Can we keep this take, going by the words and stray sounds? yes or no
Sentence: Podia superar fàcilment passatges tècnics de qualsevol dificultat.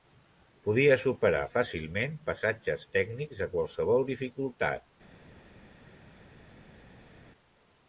yes